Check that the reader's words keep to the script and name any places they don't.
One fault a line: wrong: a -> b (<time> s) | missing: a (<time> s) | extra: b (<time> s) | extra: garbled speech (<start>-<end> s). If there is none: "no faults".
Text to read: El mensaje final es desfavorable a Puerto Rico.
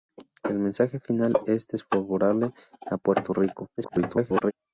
extra: garbled speech (3.8-4.5 s)